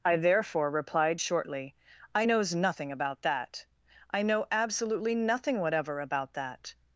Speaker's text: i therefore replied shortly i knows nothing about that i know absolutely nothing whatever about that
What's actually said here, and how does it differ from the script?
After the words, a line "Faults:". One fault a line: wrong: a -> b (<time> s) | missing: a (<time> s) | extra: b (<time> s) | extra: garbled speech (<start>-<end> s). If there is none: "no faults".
i therefore replied shortly i knows nothing about that i know absolutely nothing whatever about that
Faults:
no faults